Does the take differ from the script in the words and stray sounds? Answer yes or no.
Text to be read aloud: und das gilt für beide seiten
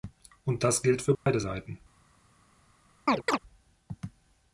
yes